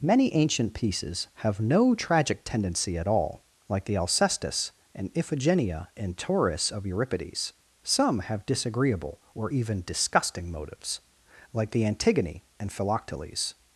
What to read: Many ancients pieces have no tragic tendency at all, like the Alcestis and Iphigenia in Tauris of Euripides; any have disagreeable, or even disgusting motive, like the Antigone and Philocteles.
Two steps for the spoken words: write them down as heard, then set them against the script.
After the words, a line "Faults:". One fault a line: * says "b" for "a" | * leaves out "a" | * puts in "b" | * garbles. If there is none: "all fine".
Many ancient pieces have no tragic tendency at all, like the Alcestis and Iphigenia in Tauris of Euripides; some have disagreeable, or even disgusting motives, like the Antigone and Philocteles.
Faults:
* says "ancient" for "ancients"
* says "some" for "any"
* says "motives" for "motive"